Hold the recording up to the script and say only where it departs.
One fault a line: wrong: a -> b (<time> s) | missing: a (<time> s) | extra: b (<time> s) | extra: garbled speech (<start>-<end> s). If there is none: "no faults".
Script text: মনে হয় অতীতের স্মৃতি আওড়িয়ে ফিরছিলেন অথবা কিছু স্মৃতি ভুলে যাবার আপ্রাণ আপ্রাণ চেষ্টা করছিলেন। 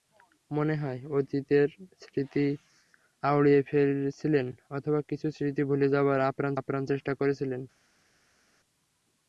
no faults